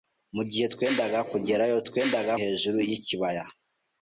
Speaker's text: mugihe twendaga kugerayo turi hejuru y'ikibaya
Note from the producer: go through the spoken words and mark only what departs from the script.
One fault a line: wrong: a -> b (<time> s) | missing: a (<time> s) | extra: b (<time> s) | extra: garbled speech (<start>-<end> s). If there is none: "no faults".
wrong: turi -> twendaga (1.9 s)